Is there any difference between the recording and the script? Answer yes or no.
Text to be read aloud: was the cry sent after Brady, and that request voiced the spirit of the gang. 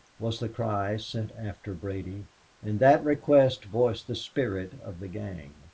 no